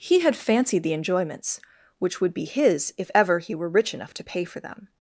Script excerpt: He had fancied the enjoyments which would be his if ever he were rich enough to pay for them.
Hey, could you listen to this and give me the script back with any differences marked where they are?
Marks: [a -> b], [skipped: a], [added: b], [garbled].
He had fancied the enjoyments which would be his if ever he were rich enough to pay for them.